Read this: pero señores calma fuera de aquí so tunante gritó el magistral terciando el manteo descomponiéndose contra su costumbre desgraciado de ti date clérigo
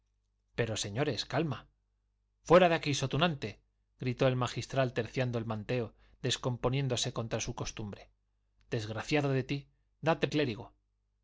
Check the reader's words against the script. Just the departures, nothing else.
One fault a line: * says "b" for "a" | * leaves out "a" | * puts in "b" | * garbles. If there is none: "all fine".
all fine